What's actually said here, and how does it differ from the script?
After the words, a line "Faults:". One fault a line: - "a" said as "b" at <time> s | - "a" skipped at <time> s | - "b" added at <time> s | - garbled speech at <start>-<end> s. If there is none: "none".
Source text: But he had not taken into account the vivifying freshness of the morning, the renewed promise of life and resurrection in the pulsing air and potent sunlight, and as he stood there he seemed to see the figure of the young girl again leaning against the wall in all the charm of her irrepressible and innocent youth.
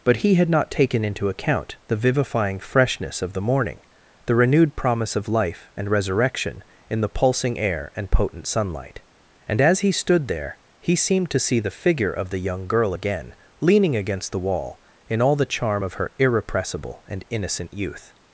But he had not taken into account the vivifying freshness of the morning, the renewed promise of life and resurrection in the pulsing air and potent sunlight, and as he stood there he seemed to see the figure of the young girl again leaning against the wall in all the charm of her irrepressible and innocent youth.
Faults:
none